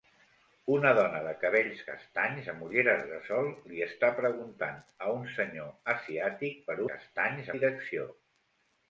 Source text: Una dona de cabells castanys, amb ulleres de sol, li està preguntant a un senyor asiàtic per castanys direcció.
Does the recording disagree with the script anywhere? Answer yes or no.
no